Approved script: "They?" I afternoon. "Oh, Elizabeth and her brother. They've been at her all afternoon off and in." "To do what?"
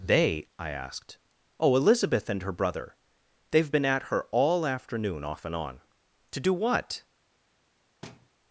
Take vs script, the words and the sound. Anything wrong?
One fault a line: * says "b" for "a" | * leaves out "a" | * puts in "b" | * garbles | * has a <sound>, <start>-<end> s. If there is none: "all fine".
* says "asked" for "afternoon"
* says "on" for "in"
* has a thud, 8.0-8.3 s